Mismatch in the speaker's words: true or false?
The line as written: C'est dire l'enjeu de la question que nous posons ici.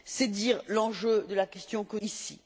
true